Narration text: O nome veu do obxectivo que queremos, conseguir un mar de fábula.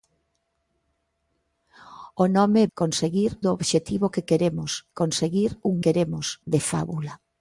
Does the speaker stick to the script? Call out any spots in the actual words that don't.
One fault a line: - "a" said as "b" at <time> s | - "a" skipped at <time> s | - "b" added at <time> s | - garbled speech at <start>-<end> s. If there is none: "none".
- "veu" said as "conseguir" at 2.7 s
- "mar" said as "queremos" at 5.8 s